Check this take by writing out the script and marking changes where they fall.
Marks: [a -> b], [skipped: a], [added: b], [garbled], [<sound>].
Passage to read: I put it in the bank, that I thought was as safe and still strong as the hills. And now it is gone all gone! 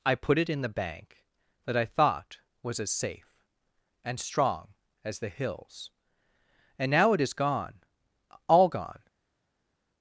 I put it in the bank, that I thought was as safe and [skipped: still] strong as the hills. And now it is gone all gone!